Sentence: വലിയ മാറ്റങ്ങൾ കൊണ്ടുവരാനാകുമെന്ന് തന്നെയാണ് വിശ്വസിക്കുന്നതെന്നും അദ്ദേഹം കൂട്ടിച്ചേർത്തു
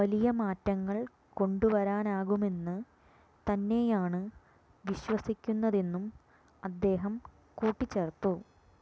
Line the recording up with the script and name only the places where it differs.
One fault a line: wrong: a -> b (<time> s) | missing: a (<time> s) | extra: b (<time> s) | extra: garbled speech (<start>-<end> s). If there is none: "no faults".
no faults